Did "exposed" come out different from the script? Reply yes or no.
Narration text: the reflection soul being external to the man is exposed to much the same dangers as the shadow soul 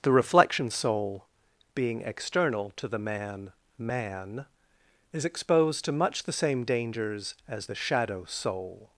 no